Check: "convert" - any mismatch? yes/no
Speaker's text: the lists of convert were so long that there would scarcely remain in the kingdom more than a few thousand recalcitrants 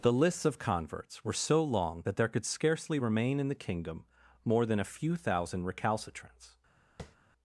yes